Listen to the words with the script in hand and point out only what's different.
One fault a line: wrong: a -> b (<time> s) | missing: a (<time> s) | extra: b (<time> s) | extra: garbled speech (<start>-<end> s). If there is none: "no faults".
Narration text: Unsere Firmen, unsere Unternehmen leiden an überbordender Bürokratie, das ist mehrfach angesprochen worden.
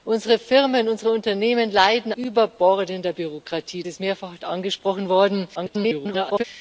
missing: an (2.1 s)
missing: das (3.8 s)
extra: garbled speech (5.5-6.4 s)